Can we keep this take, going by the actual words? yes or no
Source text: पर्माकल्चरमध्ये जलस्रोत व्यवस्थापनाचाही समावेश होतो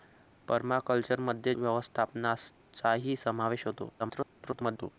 no